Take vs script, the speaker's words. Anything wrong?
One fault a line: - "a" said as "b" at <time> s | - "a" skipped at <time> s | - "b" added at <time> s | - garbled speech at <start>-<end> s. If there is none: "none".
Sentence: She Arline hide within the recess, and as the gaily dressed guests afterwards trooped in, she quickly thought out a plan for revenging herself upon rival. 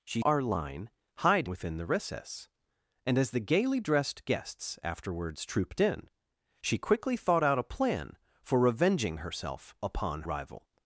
none